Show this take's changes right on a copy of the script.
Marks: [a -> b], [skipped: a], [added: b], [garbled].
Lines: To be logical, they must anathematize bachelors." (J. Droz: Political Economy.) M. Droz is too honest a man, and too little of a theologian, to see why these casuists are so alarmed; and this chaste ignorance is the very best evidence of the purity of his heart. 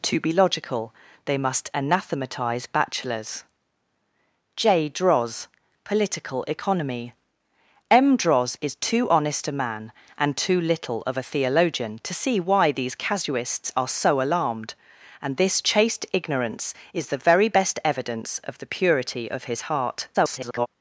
To be logical, they must anathematize bachelors." (J. Droz: Political Economy.) M. Droz is too honest a man, and too little of a theologian, to see why these casuists are so alarmed; and this chaste ignorance is the very best evidence of the purity of his heart. [garbled]